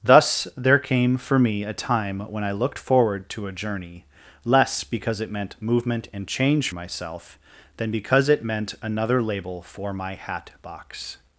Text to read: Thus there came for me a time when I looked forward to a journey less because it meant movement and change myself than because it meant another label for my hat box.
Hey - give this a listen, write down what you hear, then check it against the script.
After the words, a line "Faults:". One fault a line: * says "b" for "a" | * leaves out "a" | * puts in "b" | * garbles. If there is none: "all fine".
Thus there came for me a time when I looked forward to a journey less because it meant movement and change myself than because it meant another label for my hat box.
Faults:
all fine